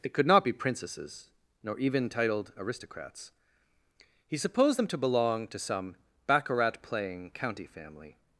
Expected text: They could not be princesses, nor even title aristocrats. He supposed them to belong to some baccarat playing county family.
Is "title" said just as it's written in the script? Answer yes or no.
no